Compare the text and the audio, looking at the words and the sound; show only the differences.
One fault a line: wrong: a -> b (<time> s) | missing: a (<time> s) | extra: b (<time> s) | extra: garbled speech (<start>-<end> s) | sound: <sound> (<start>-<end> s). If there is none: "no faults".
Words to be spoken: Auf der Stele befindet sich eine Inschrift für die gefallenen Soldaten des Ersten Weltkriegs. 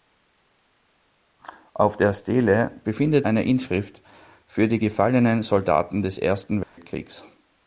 missing: sich (3.3 s)
sound: dropout (6.6-6.8 s)